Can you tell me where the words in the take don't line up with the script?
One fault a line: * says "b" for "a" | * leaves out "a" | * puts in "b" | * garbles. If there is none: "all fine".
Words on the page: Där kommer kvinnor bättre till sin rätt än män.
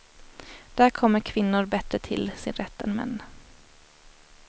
all fine